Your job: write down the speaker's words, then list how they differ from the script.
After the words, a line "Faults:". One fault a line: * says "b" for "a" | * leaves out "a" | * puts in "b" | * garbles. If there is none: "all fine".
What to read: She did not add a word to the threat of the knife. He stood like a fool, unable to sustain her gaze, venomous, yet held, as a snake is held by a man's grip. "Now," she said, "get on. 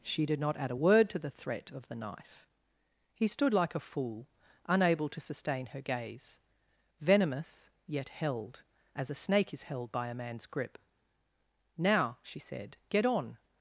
She did not add a word to the threat of the knife. He stood like a fool, unable to sustain her gaze, venomous, yet held, as a snake is held by a man's grip. "Now," she said, "get on.
Faults:
all fine